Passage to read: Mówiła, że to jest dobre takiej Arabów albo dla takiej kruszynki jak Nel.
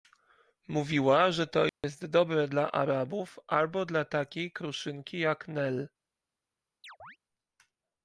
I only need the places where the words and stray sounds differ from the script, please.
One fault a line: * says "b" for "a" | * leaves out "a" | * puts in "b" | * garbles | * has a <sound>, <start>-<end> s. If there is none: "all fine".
* has a dropout, 1.7-1.8 s
* says "dla" for "takiej"
* has a chirp, 6.8-7.2 s